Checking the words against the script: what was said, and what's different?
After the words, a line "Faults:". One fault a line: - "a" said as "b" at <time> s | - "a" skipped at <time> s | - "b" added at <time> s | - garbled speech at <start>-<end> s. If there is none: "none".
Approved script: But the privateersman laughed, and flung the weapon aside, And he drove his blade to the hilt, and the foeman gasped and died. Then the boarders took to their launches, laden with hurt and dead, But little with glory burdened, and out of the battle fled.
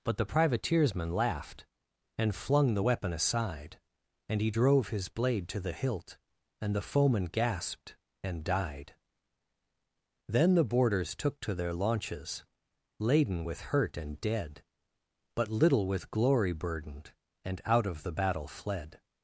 But the privateersman laughed, and flung the weapon aside, And he drove his blade to the hilt, and the foeman gasped and died. Then the boarders took to their launches, laden with hurt and dead, But little with glory burdened, and out of the battle fled.
Faults:
none